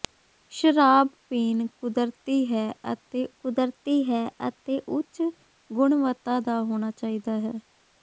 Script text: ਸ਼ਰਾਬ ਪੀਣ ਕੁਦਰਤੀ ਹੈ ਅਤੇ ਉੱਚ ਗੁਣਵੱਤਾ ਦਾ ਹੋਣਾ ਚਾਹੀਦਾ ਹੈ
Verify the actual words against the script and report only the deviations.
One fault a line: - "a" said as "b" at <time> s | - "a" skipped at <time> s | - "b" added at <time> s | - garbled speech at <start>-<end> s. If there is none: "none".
- "ਕੁਦਰਤੀ ਹੈ ਅਤੇ" added at 3.3 s